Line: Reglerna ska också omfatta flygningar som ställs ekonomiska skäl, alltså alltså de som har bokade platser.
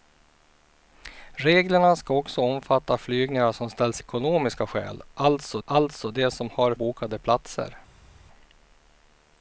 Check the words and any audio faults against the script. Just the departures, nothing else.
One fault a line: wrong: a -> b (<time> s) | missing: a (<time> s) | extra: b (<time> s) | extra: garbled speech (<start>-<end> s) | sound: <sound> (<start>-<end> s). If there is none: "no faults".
no faults